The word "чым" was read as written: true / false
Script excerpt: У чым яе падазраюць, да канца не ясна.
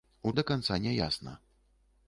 false